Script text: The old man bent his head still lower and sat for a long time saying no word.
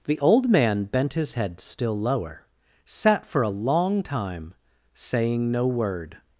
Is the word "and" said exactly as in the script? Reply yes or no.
no